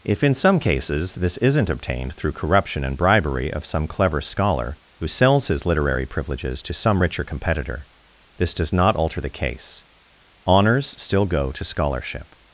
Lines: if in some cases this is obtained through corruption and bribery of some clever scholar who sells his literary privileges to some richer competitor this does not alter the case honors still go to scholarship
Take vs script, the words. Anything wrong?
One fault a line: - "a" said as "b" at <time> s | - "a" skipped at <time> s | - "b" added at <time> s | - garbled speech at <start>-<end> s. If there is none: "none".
- "is" said as "isn't" at 1.4 s